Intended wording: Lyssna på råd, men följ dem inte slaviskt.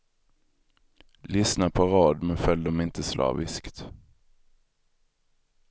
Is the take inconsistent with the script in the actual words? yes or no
no